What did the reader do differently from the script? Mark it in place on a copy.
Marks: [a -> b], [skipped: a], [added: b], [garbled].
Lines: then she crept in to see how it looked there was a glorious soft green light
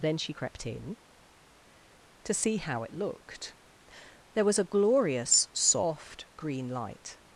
then she crept in to see how it looked there was a glorious soft green light